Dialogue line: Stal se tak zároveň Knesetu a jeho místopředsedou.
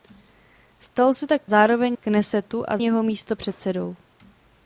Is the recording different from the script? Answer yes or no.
no